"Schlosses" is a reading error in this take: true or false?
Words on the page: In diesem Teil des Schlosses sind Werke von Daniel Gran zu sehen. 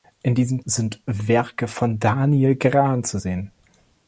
true